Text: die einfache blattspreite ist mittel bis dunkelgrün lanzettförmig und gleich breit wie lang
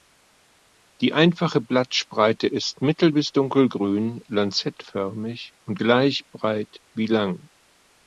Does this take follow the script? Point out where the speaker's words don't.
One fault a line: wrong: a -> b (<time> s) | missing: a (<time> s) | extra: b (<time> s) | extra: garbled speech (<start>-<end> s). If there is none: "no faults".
no faults